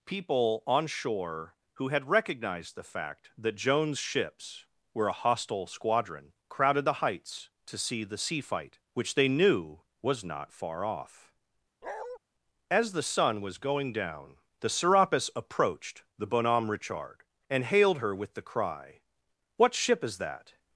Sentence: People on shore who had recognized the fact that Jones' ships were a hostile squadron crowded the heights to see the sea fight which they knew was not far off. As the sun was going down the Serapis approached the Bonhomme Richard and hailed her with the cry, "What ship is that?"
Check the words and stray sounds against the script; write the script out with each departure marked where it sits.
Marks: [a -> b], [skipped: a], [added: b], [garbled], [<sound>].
People on shore who had recognized the fact that Jones' ships were a hostile squadron crowded the heights to see the sea fight which they knew was not far off. [bark] As the sun was going down the Serapis approached the Bonhomme Richard and hailed her with the cry, "What ship is that?"